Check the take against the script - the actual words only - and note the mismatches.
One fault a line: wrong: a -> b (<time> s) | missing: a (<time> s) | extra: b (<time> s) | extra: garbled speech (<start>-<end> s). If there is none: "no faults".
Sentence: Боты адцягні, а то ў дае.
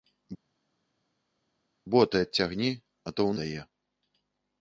no faults